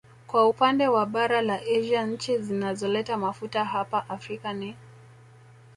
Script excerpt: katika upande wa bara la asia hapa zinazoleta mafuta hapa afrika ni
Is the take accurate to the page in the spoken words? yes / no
no